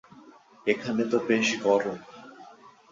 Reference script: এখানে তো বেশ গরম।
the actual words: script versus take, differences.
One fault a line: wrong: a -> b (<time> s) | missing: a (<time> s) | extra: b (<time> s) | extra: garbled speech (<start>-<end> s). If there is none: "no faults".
no faults